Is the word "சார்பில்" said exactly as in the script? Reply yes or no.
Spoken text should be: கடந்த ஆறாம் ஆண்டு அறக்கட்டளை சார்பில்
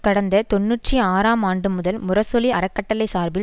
yes